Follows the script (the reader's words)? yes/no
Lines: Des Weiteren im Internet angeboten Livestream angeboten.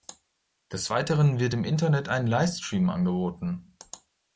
no